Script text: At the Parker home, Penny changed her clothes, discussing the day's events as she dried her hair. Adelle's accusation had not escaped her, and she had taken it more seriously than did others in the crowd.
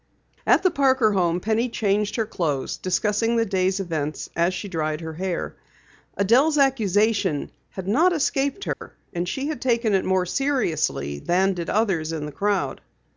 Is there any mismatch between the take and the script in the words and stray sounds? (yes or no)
yes